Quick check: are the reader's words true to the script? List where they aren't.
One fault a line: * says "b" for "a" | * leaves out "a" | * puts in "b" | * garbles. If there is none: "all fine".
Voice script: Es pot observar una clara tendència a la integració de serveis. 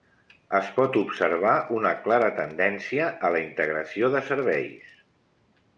all fine